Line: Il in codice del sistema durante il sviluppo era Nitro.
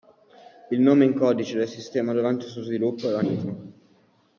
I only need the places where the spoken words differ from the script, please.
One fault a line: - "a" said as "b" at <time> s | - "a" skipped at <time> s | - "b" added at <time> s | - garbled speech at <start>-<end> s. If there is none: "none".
- "nome" added at 0.8 s
- "suo" added at 2.5 s